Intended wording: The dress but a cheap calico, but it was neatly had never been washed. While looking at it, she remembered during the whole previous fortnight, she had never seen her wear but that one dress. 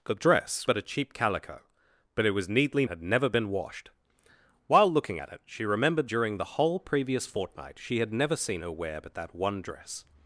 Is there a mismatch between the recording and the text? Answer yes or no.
no